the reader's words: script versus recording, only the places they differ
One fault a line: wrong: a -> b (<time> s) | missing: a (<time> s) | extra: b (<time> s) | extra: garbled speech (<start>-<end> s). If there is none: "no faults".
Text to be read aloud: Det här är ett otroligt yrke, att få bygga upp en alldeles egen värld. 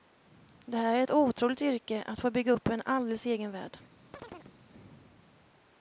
no faults